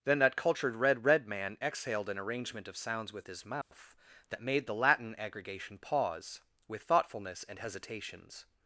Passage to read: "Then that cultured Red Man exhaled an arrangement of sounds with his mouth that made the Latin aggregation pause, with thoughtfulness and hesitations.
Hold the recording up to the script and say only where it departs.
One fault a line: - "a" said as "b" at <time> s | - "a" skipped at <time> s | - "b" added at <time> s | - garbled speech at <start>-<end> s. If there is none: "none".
- "Red" added at 1.1 s